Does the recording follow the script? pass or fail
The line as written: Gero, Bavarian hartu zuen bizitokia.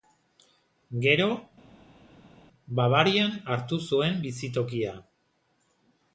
pass